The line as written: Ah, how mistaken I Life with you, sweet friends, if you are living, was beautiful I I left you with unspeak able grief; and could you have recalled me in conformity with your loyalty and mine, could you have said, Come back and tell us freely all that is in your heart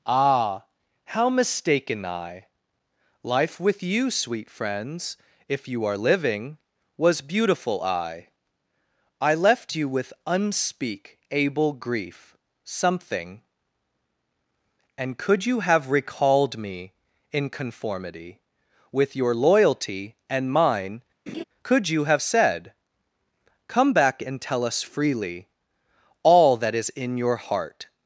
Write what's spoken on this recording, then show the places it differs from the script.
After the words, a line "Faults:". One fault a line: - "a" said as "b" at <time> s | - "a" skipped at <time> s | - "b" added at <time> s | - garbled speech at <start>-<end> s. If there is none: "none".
Ah, how mistaken I Life with you, sweet friends, if you are living, was beautiful I I left you with unspeak able grief; something and could you have recalled me in conformity with your loyalty and mine, could you have said, Come back and tell us freely all that is in your heart
Faults:
- "something" added at 12.6 s